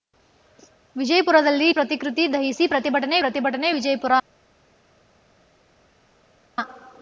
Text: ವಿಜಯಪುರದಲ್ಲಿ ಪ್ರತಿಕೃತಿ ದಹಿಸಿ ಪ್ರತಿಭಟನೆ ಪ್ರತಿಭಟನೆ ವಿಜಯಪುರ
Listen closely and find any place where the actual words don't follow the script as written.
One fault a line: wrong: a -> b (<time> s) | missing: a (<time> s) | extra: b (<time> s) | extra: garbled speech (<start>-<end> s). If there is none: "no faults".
no faults